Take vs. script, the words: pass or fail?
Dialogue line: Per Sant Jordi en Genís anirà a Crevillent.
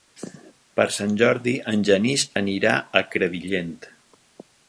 pass